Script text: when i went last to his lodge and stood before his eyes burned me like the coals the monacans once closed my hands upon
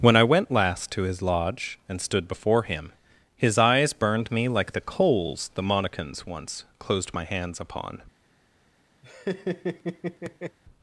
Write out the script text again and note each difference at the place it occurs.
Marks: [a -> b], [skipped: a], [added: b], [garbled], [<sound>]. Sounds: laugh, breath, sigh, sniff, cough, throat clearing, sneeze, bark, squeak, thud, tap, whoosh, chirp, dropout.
when i went last to his lodge and stood before [added: him] his eyes burned me like the coals the monacans once closed my hands upon [laugh]